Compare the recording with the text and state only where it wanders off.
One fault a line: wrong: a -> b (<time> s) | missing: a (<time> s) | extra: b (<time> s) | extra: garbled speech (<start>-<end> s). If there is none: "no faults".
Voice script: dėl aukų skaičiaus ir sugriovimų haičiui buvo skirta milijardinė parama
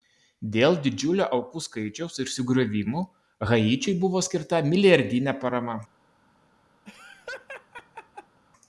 extra: didžiulio (0.8 s)